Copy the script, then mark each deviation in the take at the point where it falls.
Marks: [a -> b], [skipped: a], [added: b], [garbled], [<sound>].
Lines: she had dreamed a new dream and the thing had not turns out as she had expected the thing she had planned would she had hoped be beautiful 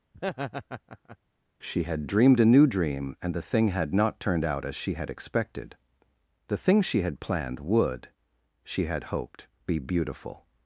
[laugh] she had dreamed a new dream and the thing had not [turns -> turned] out as she had expected the thing she had planned would she had hoped be beautiful